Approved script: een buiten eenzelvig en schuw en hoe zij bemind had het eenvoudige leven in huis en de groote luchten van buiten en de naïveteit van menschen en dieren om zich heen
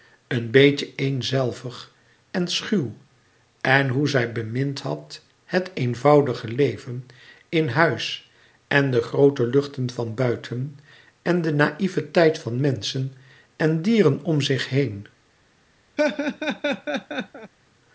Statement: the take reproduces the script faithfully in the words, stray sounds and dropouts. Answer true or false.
false